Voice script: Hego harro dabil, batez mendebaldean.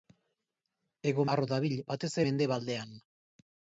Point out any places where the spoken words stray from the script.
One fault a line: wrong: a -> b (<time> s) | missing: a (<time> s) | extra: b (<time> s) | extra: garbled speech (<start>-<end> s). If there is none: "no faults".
no faults